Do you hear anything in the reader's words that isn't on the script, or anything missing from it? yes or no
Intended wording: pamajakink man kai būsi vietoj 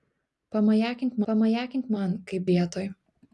yes